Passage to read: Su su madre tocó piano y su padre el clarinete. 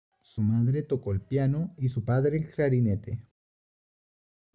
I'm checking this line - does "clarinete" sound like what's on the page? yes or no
yes